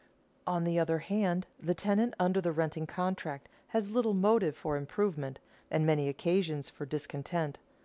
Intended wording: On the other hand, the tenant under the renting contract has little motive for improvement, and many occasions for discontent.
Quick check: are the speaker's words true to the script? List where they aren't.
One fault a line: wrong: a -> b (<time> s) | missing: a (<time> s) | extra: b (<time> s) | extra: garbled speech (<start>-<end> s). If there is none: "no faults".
no faults